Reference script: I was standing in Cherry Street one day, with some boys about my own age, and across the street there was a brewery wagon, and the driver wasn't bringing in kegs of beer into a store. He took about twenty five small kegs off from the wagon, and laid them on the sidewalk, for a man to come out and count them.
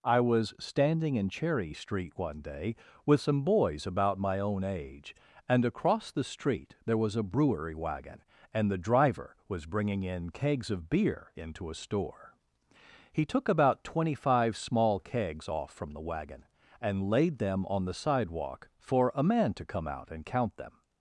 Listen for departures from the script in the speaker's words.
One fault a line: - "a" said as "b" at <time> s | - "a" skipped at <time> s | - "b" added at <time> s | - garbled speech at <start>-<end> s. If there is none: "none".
- "wasn't" said as "was" at 9.5 s